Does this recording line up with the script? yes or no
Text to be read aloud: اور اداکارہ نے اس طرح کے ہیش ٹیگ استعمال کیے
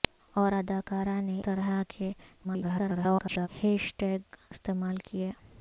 no